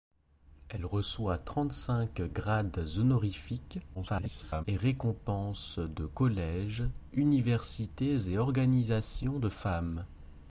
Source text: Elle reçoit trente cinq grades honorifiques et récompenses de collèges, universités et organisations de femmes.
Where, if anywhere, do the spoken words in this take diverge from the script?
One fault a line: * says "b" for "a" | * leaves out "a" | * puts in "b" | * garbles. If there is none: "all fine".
* garbles